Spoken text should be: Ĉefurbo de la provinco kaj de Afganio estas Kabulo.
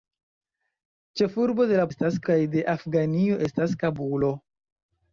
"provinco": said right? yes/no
no